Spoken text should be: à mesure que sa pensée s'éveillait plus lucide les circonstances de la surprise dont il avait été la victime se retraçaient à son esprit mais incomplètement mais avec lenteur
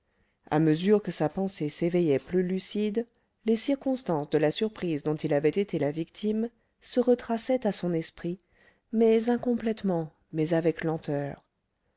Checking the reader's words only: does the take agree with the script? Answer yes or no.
yes